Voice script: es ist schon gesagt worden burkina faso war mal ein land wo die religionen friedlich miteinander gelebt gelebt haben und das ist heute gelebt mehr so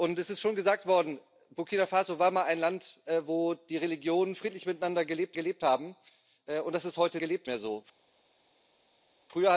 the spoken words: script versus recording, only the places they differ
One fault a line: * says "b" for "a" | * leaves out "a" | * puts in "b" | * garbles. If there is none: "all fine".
all fine